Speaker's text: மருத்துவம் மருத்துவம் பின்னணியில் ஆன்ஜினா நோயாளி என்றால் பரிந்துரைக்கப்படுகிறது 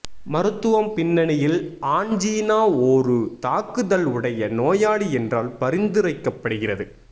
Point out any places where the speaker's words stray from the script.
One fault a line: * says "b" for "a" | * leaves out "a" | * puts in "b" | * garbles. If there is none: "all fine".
* leaves out "மருத்துவம்"
* puts in "ஒரு தாக்குதல் உடைய"